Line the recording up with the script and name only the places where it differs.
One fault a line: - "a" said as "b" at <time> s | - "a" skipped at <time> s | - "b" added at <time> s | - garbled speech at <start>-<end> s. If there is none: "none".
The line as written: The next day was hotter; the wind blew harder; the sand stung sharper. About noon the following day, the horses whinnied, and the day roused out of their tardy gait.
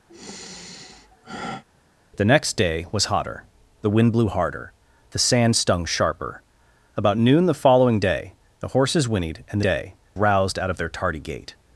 none